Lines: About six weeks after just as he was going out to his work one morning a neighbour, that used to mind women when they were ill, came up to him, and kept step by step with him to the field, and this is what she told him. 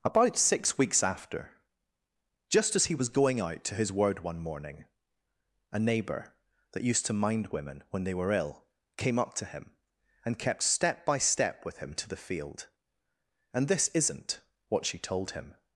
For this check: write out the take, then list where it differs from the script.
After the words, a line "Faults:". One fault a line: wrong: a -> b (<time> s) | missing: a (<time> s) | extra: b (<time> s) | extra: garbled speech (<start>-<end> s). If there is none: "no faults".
About six weeks after just as he was going out to his word one morning a neighbour, that used to mind women when they were ill, came up to him, and kept step by step with him to the field, and this isn't what she told him.
Faults:
wrong: work -> word (3.9 s)
wrong: is -> isn't (13.9 s)